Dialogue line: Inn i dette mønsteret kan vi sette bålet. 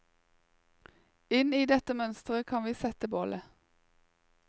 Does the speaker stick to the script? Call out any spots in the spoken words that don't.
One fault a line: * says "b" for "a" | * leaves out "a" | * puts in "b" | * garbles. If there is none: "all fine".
all fine